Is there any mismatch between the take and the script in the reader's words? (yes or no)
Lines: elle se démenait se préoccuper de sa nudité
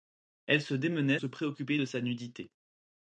no